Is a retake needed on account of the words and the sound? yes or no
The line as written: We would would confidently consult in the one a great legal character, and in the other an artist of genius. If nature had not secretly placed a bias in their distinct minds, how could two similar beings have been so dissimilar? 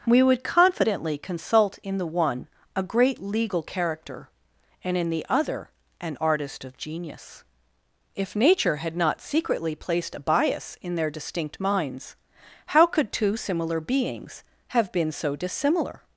yes